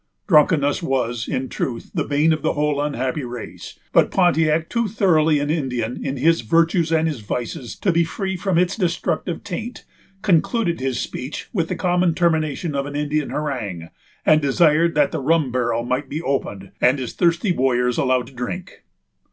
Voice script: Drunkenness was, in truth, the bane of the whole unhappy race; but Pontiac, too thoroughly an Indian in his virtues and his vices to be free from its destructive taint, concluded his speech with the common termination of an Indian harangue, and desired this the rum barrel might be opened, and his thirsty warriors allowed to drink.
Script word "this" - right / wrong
wrong